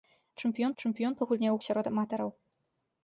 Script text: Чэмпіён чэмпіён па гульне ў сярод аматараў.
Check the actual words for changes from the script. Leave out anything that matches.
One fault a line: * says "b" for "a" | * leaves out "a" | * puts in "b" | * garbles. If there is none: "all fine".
all fine